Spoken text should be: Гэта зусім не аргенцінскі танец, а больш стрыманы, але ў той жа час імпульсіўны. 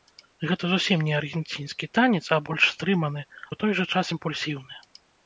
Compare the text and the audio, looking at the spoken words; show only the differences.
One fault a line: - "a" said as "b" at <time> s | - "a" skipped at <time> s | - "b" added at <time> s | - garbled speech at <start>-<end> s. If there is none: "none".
- "але" skipped at 3.2 s